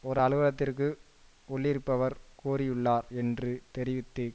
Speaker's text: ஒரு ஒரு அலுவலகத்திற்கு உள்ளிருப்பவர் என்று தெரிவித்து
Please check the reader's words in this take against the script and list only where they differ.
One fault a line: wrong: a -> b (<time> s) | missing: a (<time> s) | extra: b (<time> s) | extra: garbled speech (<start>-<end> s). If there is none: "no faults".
missing: ஒரு (0.2 s)
extra: கூறியுள்ளார் (2.4 s)